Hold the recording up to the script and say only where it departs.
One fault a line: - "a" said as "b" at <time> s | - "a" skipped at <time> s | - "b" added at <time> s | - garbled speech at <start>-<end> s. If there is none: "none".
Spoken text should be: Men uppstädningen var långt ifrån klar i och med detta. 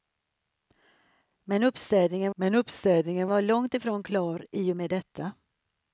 - "men uppstädningen" added at 2.3 s